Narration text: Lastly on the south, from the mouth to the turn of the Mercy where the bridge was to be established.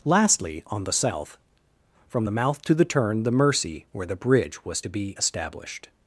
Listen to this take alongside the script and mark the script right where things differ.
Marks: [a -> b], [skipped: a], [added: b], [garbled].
Lastly on the south, from the mouth to the turn [skipped: of] the Mercy where the bridge was to be established.